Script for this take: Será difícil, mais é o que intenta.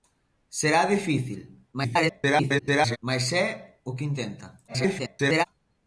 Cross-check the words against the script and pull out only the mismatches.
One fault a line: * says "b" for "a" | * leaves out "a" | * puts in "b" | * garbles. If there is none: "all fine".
* garbles
* garbles